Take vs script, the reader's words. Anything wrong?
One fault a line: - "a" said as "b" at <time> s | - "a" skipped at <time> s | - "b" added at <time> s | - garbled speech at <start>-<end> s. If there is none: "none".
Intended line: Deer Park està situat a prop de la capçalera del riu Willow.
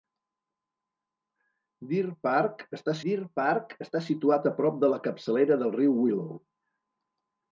- "deer Park està" added at 3.1 s